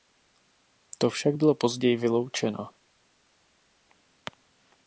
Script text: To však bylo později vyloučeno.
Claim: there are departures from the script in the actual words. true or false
false